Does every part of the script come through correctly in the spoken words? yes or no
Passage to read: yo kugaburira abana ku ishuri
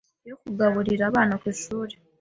yes